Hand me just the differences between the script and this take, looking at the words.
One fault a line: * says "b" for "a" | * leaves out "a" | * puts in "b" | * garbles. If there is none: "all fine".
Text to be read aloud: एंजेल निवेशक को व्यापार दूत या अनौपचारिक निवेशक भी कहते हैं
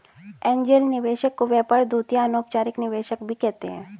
all fine